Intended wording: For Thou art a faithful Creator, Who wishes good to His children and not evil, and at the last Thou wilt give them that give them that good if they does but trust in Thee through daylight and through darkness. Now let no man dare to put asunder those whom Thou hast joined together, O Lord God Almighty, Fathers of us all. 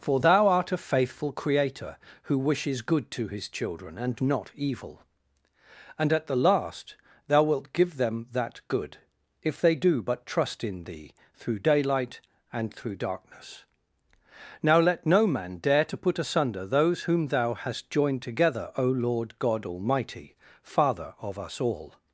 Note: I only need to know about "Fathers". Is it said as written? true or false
false